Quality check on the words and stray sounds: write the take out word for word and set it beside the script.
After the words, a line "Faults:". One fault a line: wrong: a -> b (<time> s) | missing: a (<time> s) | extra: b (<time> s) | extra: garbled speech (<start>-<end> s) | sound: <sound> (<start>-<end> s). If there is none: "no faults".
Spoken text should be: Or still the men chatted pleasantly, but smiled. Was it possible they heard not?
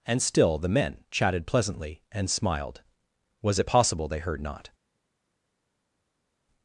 And still the men chatted pleasantly, and smiled. Was it possible they heard not?
Faults:
wrong: Or -> And (0.0 s)
wrong: but -> and (2.1 s)